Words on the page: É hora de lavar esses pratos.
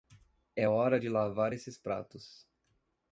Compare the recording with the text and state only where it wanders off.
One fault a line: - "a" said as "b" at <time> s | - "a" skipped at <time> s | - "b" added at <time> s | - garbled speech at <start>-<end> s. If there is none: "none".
none